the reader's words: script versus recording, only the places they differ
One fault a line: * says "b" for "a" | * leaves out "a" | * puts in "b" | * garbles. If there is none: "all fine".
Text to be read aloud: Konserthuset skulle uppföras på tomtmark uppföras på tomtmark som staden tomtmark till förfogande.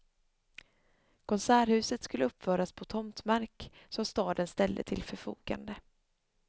* leaves out "uppföras på tomtmark"
* says "ställde" for "tomtmark"